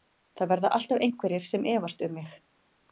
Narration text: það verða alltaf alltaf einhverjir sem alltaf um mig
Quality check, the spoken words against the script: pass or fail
fail